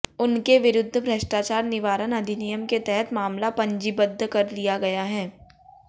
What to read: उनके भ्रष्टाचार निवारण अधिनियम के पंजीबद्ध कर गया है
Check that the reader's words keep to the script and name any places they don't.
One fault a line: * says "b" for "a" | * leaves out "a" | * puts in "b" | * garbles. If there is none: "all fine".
* puts in "विरुद्ध"
* puts in "तहत मामला"
* puts in "लिया"